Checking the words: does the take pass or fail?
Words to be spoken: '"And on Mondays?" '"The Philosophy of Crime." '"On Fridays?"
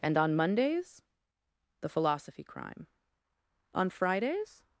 fail